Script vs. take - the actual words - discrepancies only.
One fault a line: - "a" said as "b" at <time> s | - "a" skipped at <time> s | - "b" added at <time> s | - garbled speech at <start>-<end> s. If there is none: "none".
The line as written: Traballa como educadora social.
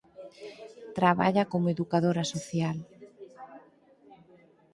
none